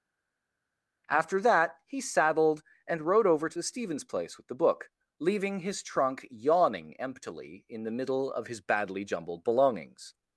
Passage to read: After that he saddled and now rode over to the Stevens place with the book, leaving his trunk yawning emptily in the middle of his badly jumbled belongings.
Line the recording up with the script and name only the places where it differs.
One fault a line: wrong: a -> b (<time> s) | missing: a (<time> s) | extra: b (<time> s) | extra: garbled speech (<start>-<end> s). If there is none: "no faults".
missing: now (3.0 s)